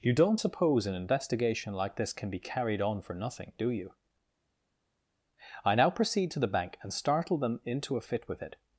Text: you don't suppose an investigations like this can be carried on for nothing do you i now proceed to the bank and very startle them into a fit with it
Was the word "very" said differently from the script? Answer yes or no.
yes